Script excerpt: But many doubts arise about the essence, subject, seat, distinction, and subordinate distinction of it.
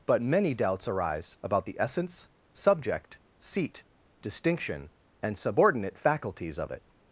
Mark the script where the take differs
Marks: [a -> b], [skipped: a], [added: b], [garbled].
But many doubts arise about the essence, subject, seat, distinction, and subordinate [distinction -> faculties] of it.